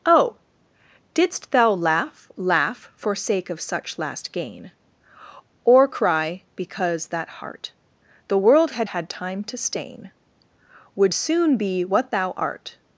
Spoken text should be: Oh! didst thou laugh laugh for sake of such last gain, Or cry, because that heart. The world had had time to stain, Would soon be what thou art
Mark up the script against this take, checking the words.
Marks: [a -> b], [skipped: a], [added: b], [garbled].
Oh! didst thou laugh laugh for sake of such last gain, Or cry, because that heart. The world had had time to stain, Would soon be what thou art